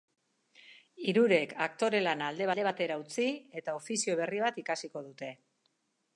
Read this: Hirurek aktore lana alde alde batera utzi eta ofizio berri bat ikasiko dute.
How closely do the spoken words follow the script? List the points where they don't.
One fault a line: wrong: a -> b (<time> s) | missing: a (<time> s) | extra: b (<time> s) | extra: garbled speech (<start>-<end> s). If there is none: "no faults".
no faults